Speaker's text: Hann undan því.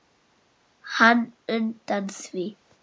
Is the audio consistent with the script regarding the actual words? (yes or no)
yes